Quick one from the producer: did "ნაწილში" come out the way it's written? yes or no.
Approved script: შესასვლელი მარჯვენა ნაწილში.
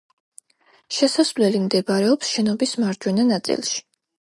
yes